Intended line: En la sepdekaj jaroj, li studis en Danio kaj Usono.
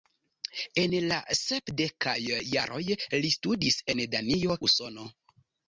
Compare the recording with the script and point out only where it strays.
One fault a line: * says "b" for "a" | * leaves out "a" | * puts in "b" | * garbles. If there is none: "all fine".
* leaves out "kaj"